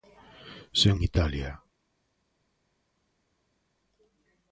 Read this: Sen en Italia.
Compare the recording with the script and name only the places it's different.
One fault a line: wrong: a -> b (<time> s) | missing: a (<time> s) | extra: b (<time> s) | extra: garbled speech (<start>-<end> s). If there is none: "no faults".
no faults